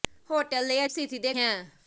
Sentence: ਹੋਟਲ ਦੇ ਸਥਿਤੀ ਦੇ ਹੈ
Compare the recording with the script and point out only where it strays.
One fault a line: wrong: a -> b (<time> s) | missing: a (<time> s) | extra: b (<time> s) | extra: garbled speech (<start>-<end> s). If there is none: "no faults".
no faults